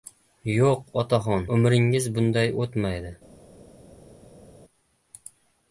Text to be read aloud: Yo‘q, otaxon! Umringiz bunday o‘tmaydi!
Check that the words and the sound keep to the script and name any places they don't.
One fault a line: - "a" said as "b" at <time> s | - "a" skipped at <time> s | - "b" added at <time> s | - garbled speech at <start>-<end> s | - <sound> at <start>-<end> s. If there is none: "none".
none